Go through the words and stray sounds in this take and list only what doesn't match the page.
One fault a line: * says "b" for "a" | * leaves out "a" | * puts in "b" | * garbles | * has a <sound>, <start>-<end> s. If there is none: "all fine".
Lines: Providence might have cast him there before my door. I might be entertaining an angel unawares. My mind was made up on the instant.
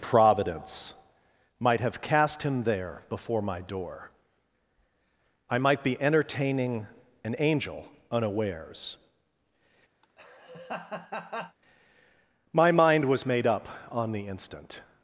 * has a laugh, 10.0-11.6 s